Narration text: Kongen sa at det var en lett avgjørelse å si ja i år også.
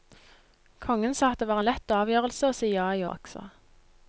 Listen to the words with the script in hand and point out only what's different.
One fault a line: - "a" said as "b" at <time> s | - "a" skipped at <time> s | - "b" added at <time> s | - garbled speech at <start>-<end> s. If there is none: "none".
- "år" skipped at 3.0 s